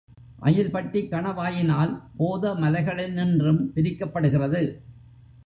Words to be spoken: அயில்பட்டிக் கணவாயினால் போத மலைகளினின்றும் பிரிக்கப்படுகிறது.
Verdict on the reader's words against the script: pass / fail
pass